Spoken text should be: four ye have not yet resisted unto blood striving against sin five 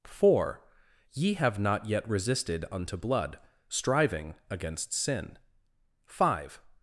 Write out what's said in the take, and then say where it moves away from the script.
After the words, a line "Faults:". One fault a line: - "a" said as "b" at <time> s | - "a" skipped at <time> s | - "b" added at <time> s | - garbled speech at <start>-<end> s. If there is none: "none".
four ye have not yet resisted unto blood striving against sin five
Faults:
none